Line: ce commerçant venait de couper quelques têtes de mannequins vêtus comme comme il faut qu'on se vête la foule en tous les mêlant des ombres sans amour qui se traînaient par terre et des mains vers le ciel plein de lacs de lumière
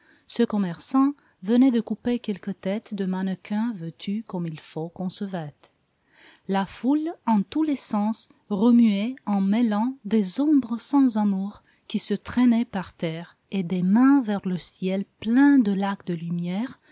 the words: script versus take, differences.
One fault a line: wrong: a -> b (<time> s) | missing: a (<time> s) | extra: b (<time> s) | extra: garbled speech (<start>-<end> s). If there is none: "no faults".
missing: comme (4.5 s)
extra: sens remuait en (7.8 s)